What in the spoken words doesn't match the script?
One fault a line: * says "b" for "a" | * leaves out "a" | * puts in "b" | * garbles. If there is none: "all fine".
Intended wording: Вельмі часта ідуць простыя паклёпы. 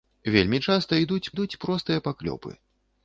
* puts in "ідуць"